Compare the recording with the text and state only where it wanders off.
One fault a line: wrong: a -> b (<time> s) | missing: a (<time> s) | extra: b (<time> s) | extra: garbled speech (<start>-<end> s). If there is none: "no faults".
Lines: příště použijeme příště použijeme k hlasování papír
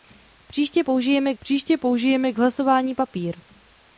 no faults